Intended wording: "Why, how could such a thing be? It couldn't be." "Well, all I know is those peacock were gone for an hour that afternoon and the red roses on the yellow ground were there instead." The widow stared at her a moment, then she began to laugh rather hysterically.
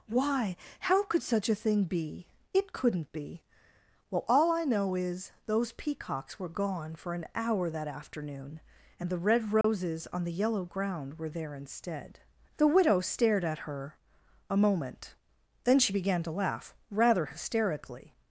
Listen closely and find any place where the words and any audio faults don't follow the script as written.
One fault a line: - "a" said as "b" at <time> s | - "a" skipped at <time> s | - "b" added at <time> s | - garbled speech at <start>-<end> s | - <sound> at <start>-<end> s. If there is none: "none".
- "peacock" said as "peacocks" at 5.7 s
- dropout at 9.6-9.6 s